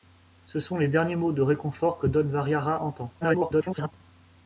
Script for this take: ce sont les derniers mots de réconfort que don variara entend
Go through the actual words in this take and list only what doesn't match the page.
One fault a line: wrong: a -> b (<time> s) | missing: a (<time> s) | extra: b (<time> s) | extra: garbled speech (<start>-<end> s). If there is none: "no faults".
extra: garbled speech (3.2-3.9 s)